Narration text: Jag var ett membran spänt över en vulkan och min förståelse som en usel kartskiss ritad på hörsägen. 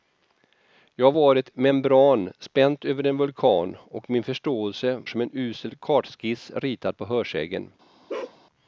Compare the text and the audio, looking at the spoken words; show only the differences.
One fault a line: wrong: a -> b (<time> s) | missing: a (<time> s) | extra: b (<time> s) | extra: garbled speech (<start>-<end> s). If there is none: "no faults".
no faults